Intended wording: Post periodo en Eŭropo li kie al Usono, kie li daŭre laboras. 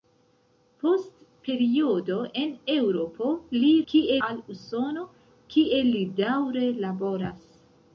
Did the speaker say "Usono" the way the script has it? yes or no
yes